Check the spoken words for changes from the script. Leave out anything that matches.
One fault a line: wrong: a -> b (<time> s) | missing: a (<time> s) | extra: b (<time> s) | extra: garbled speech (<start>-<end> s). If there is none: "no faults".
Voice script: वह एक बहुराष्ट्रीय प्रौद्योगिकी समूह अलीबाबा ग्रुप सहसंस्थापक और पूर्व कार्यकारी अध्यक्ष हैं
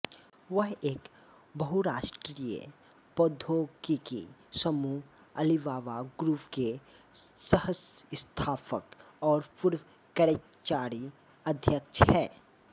extra: के (6.5 s)